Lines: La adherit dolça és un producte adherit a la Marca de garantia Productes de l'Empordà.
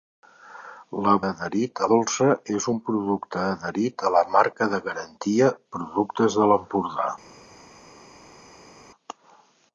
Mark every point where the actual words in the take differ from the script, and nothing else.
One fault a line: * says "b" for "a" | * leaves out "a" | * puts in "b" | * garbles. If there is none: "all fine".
all fine